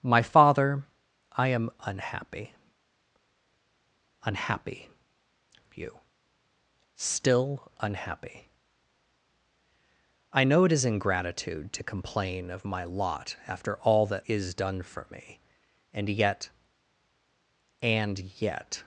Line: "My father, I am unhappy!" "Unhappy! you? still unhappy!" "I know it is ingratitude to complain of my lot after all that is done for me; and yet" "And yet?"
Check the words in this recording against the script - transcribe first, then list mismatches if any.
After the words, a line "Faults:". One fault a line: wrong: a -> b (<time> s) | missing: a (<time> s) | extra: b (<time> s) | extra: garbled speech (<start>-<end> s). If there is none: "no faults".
"My father, I am unhappy!" "Unhappy! you? still unhappy!" "I know it is ingratitude to complain of my lot after all that is done for me; and yet" "And yet?"
Faults:
no faults